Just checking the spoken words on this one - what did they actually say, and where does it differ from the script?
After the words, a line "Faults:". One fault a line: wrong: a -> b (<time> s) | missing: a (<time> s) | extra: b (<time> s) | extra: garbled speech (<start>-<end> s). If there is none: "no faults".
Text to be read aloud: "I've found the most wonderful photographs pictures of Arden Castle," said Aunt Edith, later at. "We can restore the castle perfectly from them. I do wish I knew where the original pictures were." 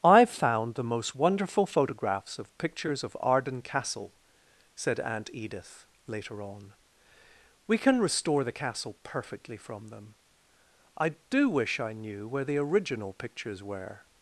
"I've found the most wonderful photographs of pictures of Arden Castle," said Aunt Edith, later on. "We can restore the castle perfectly from them. I do wish I knew where the original pictures were."
Faults:
extra: of (2.4 s)
wrong: at -> on (6.4 s)